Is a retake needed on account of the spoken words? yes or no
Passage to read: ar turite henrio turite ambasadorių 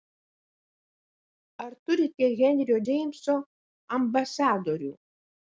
yes